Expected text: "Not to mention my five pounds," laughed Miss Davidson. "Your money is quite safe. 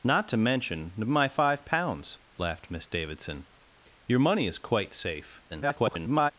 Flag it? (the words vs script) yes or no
yes